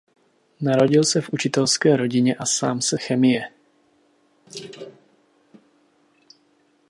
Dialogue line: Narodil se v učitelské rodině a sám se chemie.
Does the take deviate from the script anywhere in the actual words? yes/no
no